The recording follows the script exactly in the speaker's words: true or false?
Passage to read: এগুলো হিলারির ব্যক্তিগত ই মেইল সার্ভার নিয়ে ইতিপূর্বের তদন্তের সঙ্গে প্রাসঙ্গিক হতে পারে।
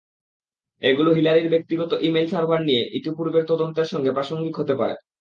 true